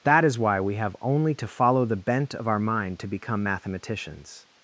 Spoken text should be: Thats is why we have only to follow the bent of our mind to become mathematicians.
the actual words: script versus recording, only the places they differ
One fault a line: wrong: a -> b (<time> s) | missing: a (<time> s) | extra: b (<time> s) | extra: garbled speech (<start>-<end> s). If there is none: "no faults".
wrong: Thats -> That (0.0 s)